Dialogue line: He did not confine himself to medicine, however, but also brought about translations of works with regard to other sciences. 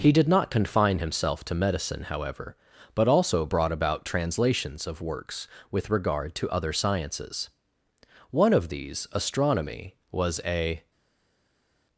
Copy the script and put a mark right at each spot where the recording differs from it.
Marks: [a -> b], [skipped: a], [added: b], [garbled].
He did not confine himself to medicine, however, but also brought about translations of works with regard to other sciences. [added: One of these astronomy was a]